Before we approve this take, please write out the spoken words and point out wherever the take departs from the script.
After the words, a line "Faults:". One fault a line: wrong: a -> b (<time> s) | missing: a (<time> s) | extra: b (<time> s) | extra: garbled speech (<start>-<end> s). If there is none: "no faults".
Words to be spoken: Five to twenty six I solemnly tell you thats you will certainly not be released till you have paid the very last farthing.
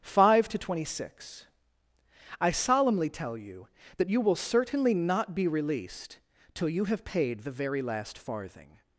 Five to twenty six I solemnly tell you that you will certainly not be released till you have paid the very last farthing.
Faults:
wrong: thats -> that (4.0 s)